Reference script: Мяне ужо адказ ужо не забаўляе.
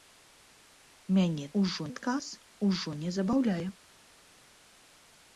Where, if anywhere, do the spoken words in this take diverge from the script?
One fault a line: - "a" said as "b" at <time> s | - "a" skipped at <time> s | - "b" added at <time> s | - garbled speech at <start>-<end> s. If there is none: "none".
none